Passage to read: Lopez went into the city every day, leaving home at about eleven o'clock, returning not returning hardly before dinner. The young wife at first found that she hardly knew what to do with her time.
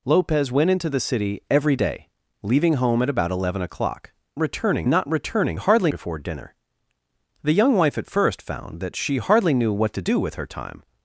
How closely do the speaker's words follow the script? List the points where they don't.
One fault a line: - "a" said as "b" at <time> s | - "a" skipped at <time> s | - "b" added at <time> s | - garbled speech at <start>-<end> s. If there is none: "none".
none